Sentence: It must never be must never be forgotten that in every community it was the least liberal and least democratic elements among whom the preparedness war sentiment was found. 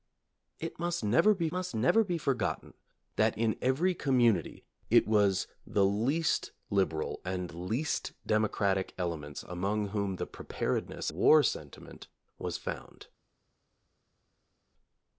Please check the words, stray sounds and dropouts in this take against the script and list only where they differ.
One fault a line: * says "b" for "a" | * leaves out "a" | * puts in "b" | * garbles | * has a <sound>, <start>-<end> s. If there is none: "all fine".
all fine